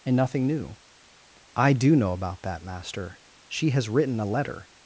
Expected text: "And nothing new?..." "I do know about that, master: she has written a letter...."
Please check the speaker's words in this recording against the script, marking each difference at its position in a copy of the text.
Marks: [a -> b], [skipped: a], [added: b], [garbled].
"And nothing new?..." "I do know about that, master: she has written a letter...."